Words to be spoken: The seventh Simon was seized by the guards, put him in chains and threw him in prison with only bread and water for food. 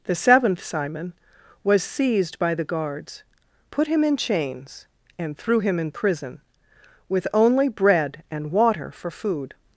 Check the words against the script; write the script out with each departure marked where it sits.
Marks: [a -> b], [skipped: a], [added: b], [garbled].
The seventh Simon was seized by the guards, put him in chains and threw him in prison with only bread and water for food.